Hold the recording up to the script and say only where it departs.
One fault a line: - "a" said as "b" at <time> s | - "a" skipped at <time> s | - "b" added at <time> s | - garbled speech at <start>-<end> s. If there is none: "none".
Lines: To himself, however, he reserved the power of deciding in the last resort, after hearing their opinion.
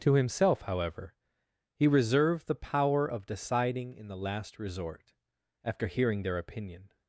none